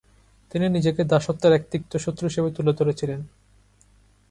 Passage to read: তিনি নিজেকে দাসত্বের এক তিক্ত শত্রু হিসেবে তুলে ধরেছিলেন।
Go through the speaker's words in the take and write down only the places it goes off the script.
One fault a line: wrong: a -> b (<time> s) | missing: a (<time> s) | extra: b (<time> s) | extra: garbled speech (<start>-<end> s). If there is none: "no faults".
no faults